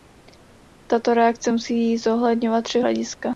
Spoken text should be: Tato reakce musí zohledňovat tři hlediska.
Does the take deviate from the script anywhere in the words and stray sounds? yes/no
no